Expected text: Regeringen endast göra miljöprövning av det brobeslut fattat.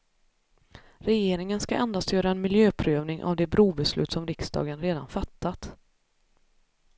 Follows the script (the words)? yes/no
no